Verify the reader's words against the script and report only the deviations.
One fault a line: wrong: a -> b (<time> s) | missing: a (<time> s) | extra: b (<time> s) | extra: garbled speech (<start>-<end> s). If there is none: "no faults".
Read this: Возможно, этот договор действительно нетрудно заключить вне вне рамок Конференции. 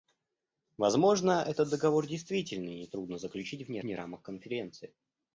no faults